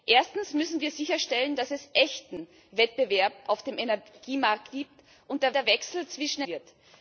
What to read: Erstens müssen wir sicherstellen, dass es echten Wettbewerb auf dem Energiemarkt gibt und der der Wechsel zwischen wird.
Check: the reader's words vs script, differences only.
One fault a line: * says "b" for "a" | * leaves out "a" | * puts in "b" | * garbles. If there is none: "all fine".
all fine